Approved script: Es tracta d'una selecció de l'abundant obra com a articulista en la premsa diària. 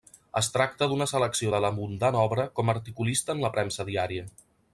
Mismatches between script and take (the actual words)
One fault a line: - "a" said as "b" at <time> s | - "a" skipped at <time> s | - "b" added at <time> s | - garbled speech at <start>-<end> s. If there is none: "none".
none